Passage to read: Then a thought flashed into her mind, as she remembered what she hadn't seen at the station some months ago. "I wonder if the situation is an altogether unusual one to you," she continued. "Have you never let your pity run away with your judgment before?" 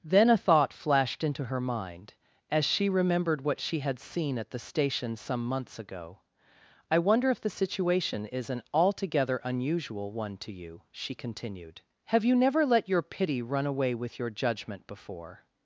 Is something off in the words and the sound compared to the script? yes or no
yes